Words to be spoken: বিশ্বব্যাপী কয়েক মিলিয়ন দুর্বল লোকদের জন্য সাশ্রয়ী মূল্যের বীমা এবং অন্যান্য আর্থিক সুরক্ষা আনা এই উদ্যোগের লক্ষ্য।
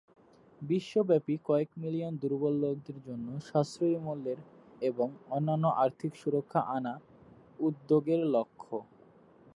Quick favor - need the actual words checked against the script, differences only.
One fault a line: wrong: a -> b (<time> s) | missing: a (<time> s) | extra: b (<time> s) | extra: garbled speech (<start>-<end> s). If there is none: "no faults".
missing: বীমা (4.4 s)
missing: এই (6.9 s)